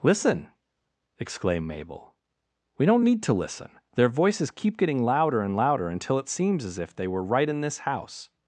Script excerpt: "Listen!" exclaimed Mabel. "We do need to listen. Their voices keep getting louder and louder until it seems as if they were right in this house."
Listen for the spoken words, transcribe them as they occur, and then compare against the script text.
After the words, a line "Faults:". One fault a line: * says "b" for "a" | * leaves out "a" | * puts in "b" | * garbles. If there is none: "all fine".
"Listen!" exclaimed Mabel. "We don't need to listen. Their voices keep getting louder and louder until it seems as if they were right in this house."
Faults:
* says "don't" for "do"